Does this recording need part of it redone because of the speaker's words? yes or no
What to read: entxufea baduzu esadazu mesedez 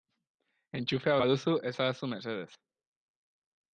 no